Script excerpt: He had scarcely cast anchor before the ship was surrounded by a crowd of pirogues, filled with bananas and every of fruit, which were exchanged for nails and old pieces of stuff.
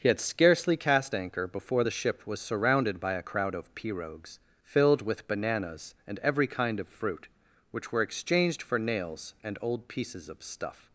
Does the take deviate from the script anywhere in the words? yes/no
yes